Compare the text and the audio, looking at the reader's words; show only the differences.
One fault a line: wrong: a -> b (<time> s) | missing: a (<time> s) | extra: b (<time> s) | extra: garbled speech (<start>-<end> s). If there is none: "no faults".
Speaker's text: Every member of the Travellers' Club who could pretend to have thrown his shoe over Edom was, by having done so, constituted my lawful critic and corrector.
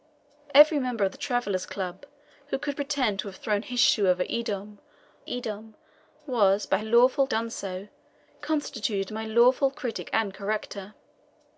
extra: Edom (5.3 s)
wrong: having -> lawful (6.8 s)